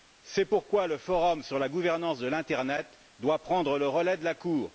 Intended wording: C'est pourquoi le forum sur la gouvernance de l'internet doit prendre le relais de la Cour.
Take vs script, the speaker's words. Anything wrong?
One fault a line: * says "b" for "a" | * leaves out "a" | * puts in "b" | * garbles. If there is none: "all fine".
all fine